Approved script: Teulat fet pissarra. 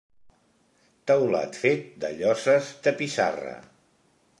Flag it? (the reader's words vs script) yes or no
yes